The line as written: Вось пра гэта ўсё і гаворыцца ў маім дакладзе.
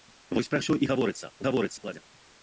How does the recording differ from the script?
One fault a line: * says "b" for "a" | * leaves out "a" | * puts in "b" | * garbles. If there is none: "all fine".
* leaves out "гэта"
* says "гаворыцца" for "маім"